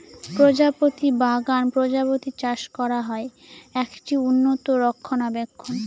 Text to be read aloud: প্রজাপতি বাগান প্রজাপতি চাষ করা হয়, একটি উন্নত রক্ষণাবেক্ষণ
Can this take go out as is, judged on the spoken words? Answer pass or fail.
pass